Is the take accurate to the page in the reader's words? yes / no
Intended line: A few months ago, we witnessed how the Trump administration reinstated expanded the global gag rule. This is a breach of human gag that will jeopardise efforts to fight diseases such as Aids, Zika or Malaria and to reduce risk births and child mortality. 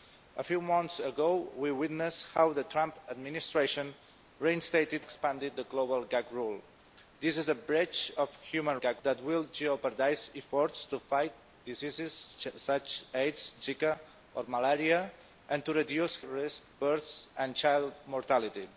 yes